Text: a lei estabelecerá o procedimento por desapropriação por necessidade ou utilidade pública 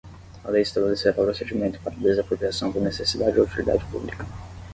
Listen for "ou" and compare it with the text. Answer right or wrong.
right